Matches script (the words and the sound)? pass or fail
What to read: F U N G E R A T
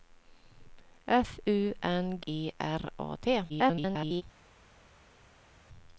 fail